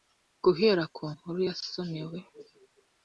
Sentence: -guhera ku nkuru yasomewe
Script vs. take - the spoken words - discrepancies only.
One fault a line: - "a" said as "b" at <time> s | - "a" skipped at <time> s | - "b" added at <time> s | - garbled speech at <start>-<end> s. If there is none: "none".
none